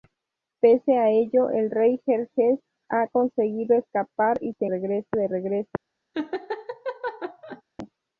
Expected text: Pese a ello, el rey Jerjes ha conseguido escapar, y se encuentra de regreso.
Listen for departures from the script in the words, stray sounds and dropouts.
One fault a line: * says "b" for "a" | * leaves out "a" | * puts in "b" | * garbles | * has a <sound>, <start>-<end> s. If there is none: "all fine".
* says "regreso" for "encuentra"
* has a laugh, 6.1-7.6 s